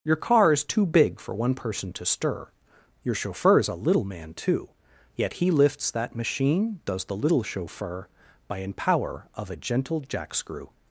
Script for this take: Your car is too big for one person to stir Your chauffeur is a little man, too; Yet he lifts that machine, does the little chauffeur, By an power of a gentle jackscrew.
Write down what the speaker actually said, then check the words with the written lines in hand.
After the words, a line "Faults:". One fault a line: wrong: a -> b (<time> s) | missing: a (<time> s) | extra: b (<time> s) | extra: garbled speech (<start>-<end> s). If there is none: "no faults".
Your car is too big for one person to stir Your chauffeur is a little man, too; Yet he lifts that machine, does the little chauffeur, By an power of a gentle jackscrew.
Faults:
no faults